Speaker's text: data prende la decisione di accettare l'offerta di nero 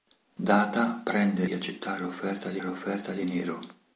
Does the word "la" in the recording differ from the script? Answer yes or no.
yes